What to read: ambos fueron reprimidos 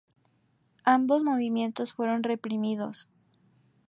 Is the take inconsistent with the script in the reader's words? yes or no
yes